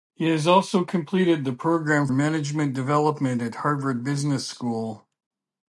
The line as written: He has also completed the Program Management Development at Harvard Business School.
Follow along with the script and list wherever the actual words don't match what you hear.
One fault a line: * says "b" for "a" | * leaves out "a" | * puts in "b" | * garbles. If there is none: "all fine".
all fine